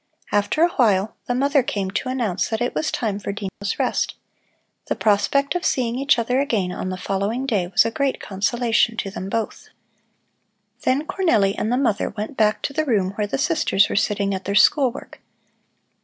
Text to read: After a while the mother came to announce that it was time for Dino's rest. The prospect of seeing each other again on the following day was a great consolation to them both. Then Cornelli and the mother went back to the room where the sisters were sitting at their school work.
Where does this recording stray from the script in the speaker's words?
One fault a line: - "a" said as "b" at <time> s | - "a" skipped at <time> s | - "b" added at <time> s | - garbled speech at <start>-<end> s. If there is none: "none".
none